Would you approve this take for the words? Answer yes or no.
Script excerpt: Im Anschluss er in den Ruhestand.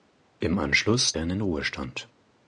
yes